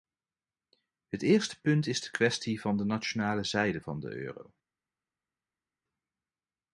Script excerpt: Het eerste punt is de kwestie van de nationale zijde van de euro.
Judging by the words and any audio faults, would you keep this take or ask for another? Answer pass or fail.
pass